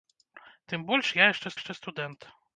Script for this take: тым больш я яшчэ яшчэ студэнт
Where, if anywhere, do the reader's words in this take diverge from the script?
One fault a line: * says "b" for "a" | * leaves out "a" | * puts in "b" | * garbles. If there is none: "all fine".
all fine